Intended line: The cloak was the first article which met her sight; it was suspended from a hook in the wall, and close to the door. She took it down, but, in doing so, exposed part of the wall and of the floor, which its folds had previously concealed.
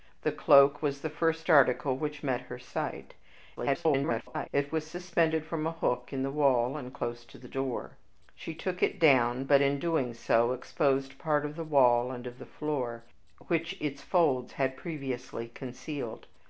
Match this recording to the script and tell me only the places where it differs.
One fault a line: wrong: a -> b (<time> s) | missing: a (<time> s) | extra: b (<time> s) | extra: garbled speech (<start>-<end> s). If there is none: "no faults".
extra: garbled speech (3.6-4.5 s)